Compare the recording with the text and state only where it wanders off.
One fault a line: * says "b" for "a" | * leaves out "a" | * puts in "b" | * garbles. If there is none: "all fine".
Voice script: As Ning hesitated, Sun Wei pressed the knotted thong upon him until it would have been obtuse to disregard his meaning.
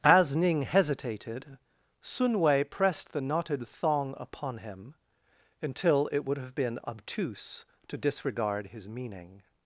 all fine